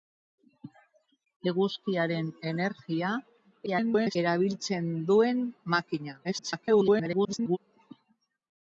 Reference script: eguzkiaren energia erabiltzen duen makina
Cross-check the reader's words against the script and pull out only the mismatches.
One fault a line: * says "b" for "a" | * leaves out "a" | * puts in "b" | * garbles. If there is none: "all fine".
* garbles
* garbles